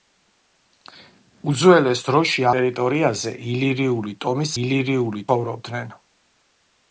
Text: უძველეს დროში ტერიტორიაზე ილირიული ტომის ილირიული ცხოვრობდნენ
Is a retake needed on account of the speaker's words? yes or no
no